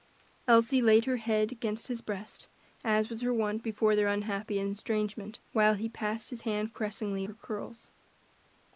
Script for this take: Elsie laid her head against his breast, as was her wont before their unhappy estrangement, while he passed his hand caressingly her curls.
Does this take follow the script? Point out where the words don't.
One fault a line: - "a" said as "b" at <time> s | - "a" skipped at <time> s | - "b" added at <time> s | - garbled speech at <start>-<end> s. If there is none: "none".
none